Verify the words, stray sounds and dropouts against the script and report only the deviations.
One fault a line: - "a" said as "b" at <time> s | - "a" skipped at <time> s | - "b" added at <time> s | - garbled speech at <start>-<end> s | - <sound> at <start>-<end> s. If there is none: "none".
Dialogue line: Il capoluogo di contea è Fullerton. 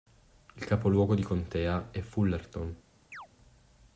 - chirp at 3.1-3.3 s